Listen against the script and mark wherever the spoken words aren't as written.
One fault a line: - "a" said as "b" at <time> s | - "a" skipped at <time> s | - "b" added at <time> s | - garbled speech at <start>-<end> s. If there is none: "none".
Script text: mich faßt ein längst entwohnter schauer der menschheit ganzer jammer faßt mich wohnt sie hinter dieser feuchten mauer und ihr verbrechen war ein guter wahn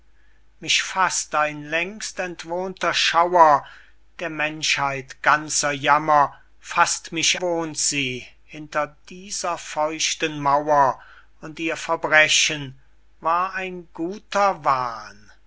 none